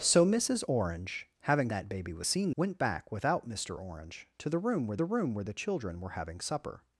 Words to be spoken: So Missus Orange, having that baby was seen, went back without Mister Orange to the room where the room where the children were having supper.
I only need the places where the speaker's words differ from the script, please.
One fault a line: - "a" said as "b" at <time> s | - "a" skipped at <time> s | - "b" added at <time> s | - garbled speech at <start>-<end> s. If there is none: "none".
none